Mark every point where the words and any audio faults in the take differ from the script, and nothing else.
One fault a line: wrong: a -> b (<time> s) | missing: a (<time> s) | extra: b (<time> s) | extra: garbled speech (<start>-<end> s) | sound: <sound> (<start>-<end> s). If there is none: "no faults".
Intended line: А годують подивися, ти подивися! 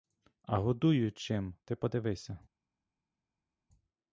wrong: подивися -> чим (1.2 s)